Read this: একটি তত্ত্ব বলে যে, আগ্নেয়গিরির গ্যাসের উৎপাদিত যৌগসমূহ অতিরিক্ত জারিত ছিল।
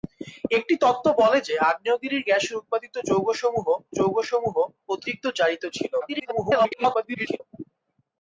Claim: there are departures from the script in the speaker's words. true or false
true